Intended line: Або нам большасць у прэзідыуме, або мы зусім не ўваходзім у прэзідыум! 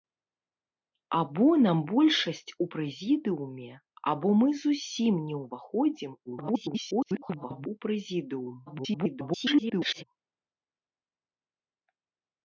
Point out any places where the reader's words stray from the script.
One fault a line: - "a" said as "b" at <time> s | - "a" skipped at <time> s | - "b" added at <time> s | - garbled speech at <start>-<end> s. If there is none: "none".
- garbled speech at 6.3-7.7 s
- garbled speech at 8.7-10.0 s